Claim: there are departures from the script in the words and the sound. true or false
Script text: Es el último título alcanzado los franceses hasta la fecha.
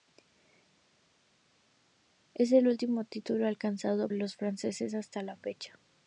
false